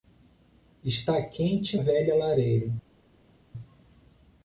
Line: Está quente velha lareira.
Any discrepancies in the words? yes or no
no